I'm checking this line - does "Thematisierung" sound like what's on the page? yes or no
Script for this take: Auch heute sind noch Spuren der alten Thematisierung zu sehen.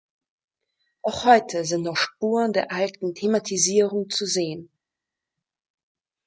yes